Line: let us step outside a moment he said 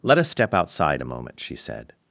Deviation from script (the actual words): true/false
true